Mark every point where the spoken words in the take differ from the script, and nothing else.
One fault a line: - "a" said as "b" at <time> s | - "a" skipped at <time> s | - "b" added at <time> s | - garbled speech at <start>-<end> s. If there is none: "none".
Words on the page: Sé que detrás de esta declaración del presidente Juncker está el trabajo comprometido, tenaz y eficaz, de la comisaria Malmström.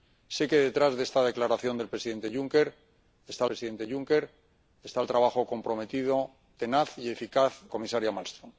- "presidente Juncker está" added at 3.4 s
- "de la" skipped at 7.5 s